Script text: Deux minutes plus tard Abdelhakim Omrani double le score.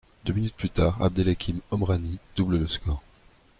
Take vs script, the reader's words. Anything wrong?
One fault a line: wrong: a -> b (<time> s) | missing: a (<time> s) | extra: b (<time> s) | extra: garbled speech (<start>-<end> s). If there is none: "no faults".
no faults